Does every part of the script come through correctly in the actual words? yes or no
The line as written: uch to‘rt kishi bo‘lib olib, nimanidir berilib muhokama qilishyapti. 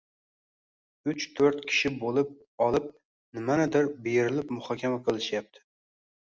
yes